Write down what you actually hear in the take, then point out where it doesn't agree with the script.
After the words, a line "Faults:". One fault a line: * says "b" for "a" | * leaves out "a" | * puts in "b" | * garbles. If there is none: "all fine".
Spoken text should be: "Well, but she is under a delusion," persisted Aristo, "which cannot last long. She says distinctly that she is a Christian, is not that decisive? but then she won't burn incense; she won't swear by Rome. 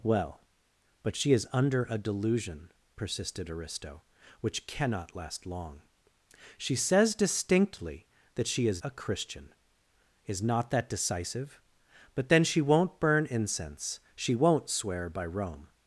"Well, but she is under a delusion," persisted Aristo, "which cannot last long. She says distinctly that she is a Christian, is not that decisive? but then she won't burn incense; she won't swear by Rome.
Faults:
all fine